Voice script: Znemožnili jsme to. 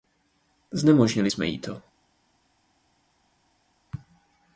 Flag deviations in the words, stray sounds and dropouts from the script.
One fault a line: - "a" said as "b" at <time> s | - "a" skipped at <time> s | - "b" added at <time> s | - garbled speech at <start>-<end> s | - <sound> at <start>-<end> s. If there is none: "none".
- "jí" added at 1.5 s